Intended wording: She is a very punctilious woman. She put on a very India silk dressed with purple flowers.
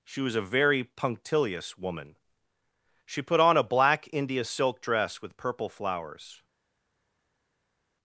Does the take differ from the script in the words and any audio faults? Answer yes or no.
yes